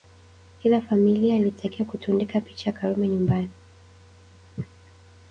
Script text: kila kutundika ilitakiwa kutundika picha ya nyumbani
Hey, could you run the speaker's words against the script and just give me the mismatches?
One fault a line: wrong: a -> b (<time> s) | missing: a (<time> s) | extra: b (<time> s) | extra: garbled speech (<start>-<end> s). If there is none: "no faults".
wrong: kutundika -> familia (0.8 s)
extra: karume (2.8 s)